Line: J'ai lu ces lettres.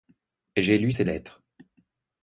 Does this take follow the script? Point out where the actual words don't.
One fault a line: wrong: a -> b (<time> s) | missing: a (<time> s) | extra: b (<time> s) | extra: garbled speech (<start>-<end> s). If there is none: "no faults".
no faults